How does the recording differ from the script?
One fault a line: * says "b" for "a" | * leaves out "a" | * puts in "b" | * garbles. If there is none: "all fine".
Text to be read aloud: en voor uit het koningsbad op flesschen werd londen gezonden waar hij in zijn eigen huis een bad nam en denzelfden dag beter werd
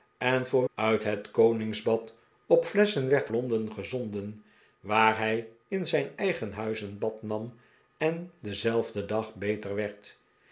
all fine